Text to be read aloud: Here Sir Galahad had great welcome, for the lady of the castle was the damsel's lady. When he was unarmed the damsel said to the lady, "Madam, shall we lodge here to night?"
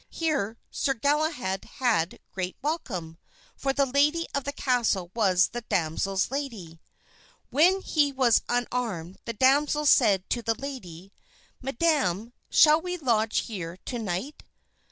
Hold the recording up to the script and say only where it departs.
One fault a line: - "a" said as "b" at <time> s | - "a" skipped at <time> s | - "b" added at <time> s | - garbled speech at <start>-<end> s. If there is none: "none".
none